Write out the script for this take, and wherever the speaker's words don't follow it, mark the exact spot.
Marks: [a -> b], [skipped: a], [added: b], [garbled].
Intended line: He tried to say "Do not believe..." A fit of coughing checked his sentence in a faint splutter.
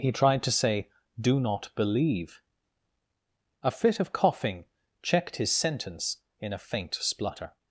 He tried to say "Do not believe..." A fit of coughing checked his sentence in a faint splutter.